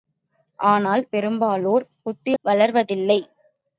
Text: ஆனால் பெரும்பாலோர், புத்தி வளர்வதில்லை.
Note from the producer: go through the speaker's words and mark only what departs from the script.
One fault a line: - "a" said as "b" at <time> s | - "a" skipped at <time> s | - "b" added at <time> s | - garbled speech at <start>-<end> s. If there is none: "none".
none